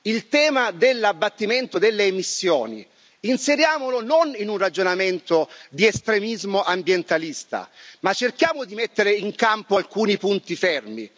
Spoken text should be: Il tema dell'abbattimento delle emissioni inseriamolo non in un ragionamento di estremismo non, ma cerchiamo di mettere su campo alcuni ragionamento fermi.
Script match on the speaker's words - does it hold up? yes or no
no